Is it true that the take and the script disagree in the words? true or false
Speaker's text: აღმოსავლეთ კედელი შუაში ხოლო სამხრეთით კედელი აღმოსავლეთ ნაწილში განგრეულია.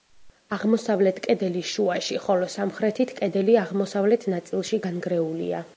false